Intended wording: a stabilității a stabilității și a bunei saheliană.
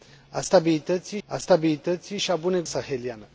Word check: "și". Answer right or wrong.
right